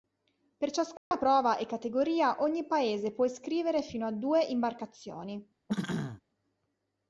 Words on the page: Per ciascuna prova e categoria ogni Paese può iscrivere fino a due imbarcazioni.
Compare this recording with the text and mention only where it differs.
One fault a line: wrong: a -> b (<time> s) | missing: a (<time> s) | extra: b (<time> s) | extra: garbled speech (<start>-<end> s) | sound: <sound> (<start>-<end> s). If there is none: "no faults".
sound: dropout (1.0-1.1 s)
sound: throat clearing (5.7-6.2 s)